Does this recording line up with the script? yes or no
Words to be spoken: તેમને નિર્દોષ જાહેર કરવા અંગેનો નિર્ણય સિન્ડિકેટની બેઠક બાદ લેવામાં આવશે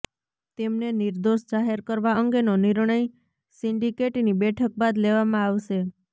yes